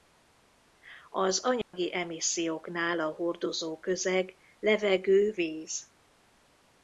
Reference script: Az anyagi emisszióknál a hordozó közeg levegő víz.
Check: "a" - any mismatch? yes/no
no